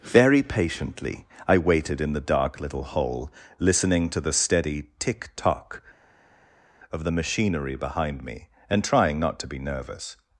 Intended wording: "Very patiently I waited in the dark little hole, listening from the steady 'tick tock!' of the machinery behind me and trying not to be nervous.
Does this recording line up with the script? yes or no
no